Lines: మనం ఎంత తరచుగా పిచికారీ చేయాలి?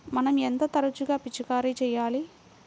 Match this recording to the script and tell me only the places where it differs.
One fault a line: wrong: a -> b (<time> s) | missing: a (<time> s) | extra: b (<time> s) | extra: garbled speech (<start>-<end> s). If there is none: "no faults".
no faults